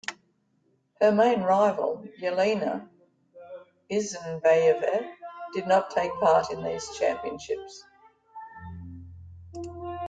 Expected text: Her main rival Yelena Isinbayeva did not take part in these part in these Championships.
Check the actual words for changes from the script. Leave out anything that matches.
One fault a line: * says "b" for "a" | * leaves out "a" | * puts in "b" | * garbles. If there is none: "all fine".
* leaves out "part in these"